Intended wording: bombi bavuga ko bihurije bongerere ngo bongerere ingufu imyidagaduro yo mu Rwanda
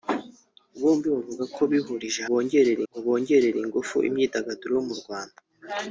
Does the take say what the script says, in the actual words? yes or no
yes